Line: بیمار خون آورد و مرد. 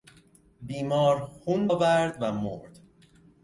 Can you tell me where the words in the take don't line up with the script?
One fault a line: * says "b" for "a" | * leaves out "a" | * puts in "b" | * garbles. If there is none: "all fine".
all fine